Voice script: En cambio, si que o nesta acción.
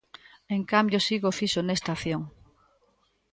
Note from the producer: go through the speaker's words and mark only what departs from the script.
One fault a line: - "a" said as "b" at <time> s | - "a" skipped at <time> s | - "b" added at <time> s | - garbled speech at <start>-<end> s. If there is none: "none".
- "fixo" added at 1.4 s